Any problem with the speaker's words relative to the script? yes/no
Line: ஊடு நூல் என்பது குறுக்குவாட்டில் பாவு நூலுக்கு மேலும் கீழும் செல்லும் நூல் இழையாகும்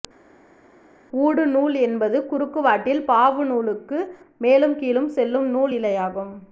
no